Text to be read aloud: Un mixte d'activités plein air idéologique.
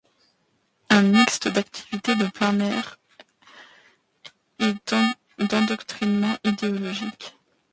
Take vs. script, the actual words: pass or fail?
fail